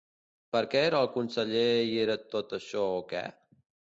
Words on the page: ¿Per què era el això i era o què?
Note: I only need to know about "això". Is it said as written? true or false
false